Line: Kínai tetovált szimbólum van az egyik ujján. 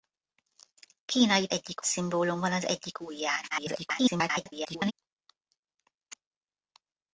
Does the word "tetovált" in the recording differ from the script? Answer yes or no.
yes